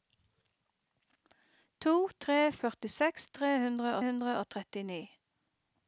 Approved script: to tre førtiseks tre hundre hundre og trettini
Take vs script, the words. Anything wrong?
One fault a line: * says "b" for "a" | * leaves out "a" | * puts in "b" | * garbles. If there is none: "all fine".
all fine